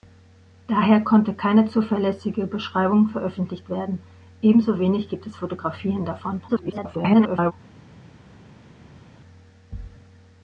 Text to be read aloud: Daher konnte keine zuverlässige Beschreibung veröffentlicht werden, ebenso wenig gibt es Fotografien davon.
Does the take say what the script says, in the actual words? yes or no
no